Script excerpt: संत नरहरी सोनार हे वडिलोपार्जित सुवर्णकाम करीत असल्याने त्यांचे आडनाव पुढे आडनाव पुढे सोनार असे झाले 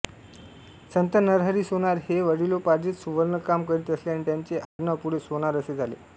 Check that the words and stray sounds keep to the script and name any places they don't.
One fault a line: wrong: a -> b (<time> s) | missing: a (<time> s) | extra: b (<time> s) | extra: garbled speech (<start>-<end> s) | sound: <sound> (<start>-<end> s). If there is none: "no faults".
sound: dropout (4.6-4.8 s)
missing: आडनाव पुढे (5.2 s)